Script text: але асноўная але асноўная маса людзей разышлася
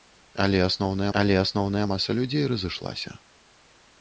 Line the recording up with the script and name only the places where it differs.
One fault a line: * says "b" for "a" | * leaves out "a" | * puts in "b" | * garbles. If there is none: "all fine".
all fine